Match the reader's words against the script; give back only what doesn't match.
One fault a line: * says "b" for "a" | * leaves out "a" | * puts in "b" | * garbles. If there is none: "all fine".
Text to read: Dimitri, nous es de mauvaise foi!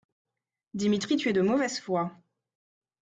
* says "tu" for "nous"